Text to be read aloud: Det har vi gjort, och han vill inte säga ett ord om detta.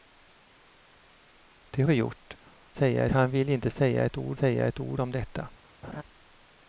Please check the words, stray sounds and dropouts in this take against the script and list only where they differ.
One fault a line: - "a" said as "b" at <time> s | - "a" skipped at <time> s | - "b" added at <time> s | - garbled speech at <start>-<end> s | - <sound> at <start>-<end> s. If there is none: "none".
- "har" skipped at 1.8 s
- "och" said as "säga" at 2.7 s
- "säga ett ord" added at 4.3 s
- laugh at 5.8-6.0 s